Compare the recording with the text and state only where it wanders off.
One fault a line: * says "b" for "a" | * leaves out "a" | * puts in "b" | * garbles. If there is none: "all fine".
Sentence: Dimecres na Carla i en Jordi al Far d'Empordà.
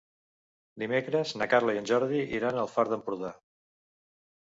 * puts in "iran"